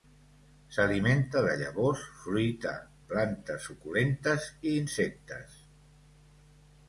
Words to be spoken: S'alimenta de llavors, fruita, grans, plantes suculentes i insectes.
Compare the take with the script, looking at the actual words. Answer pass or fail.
fail